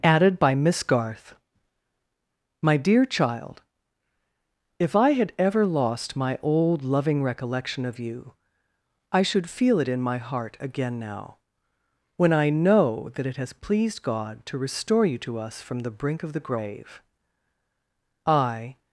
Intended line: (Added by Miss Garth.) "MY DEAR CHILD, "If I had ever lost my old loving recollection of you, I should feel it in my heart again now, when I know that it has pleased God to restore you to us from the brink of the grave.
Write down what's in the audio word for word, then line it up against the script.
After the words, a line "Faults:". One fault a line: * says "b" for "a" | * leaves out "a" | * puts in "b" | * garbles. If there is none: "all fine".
(Added by Miss Garth.) "MY DEAR CHILD, "If I had ever lost my old loving recollection of you, I should feel it in my heart again now, when I know that it has pleased God to restore you to us from the brink of the grave. I
Faults:
* puts in "I"